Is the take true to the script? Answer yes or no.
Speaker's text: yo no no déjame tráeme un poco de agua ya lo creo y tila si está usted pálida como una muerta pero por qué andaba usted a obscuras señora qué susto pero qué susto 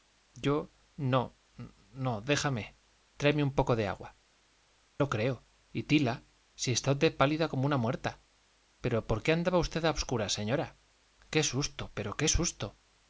no